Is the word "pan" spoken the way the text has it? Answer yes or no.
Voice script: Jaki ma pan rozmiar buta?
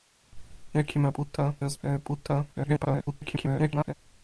no